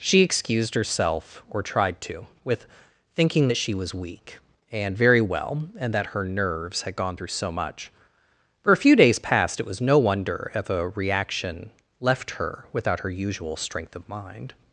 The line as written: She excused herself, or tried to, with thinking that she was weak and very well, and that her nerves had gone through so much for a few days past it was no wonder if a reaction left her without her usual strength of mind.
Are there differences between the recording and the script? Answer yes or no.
no